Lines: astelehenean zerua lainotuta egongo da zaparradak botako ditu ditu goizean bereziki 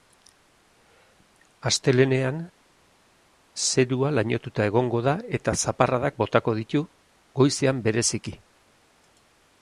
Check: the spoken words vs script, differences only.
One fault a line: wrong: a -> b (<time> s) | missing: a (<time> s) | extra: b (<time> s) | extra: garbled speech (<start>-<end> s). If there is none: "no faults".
extra: eta (5.4 s)
missing: ditu (6.8 s)